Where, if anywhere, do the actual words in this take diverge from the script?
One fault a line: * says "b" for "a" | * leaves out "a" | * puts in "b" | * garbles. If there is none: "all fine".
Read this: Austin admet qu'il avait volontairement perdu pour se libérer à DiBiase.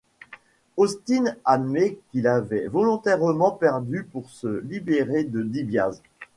* says "de" for "à"